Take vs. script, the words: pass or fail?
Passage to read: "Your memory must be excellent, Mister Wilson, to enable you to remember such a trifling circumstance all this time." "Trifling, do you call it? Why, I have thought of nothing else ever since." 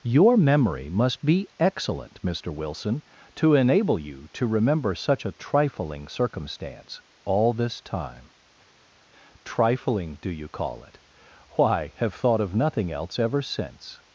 fail